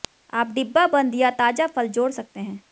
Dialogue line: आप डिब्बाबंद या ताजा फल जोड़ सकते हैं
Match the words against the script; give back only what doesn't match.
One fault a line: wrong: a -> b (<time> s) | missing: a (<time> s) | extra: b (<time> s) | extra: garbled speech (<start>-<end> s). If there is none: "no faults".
no faults